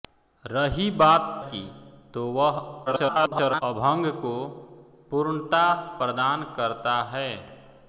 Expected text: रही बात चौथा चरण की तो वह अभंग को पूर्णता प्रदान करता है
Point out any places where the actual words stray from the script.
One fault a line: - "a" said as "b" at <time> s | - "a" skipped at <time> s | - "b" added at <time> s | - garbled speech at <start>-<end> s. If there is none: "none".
- "चौथा चरण" skipped at 1.4 s
- garbled speech at 2.9-3.6 s